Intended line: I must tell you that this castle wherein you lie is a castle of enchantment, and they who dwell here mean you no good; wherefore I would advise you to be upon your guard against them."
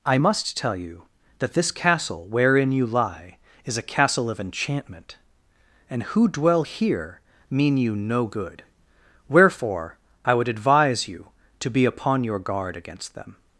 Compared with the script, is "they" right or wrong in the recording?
wrong